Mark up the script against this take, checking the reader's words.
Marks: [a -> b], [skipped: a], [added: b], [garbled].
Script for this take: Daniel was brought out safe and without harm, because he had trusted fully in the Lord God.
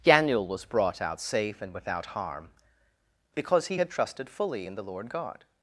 Daniel was brought out safe and without harm, because he had trusted fully in the Lord God.